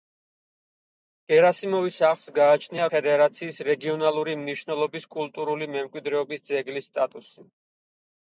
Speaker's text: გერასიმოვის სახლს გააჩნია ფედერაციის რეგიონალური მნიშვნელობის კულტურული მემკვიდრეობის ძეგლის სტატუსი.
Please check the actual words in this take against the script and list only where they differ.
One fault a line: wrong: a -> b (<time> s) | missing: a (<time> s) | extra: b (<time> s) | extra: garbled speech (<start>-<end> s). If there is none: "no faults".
no faults